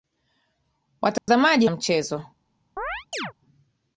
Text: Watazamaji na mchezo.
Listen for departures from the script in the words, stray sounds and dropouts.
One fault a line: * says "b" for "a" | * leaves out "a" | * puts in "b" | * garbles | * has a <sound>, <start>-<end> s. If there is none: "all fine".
* has a dropout, 1.2-1.3 s
* has a chirp, 2.8-3.3 s